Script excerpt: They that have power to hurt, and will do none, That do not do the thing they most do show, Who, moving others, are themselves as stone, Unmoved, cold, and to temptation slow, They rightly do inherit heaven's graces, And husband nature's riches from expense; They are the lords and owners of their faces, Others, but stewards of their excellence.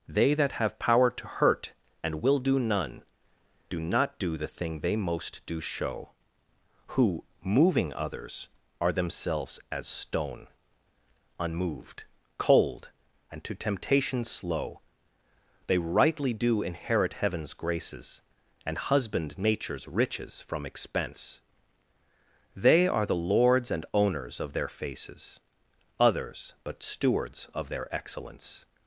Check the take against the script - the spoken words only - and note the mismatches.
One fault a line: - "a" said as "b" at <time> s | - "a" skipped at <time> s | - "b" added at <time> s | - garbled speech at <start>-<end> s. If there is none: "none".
- "That" skipped at 3.0 s